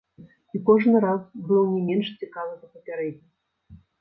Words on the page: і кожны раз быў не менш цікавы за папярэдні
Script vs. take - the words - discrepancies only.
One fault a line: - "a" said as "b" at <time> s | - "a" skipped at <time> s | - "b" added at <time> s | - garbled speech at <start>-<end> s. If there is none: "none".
none